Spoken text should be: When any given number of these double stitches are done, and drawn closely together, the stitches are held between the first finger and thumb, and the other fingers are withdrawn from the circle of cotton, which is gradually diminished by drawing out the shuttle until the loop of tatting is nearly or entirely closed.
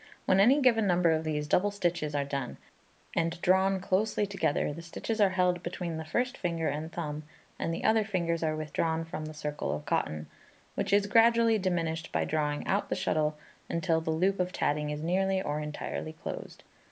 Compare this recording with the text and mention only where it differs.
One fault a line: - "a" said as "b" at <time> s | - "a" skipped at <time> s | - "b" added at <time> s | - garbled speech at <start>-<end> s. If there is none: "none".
none